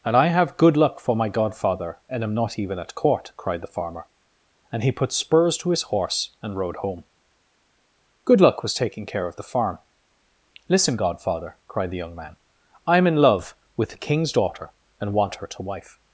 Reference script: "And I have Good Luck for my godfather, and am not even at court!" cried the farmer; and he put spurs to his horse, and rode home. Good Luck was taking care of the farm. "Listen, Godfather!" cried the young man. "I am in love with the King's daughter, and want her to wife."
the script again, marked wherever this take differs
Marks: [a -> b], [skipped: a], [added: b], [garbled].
"And I have Good Luck for my godfather, and am not even at court!" cried the farmer; and he put spurs to his horse, and rode home. Good Luck was taking care of the farm. "Listen, Godfather!" cried the young man. "I am in love with the King's daughter, and want her to wife."